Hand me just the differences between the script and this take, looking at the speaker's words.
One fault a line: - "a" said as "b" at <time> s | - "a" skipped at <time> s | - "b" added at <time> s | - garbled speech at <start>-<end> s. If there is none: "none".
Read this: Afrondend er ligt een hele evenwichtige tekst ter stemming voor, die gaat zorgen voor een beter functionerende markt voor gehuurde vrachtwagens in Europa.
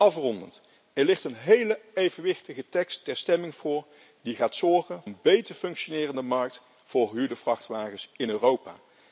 - "voor" skipped at 5.0 s